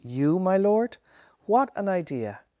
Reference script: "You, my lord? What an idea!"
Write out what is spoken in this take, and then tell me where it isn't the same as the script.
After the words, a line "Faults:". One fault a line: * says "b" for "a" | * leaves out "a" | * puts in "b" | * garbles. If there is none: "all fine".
"You, my lord? What an idea!"
Faults:
all fine